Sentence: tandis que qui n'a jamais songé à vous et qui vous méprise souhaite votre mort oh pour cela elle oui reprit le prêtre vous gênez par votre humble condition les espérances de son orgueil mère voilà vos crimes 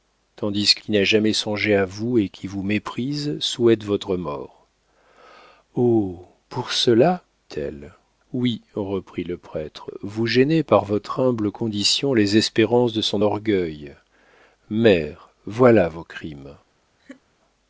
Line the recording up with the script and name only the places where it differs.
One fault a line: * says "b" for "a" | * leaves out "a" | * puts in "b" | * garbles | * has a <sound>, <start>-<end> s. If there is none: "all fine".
* has a laugh, 17.0-17.2 s